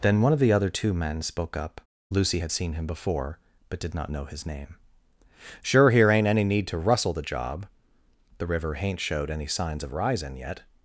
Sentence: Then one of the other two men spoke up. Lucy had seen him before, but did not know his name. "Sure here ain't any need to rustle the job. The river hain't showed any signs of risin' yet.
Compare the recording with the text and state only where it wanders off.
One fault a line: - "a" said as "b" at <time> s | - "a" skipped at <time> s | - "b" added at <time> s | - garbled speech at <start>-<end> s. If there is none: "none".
none